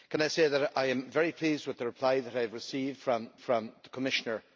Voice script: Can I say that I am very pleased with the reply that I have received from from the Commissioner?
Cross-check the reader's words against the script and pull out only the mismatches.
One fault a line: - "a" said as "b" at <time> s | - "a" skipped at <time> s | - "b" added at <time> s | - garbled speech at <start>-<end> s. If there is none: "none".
none